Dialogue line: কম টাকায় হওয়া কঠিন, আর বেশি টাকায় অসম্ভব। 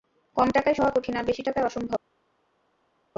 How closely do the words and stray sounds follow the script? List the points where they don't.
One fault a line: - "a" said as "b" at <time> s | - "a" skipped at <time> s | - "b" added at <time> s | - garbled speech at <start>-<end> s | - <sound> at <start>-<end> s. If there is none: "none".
none